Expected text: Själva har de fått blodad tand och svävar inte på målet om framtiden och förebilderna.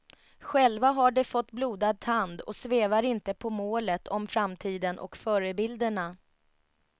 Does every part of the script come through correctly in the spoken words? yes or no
yes